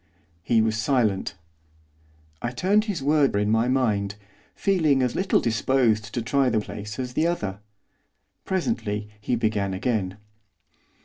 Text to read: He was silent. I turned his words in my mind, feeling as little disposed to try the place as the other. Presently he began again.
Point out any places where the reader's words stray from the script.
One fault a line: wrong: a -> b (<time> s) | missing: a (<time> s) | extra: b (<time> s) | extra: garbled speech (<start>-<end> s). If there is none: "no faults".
no faults